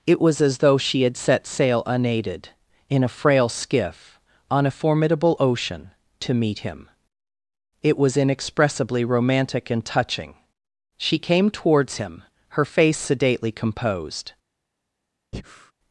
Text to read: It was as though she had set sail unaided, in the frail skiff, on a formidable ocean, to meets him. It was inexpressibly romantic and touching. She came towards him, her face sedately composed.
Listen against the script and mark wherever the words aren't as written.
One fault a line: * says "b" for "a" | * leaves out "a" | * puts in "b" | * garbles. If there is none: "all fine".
* says "a" for "the"
* says "meet" for "meets"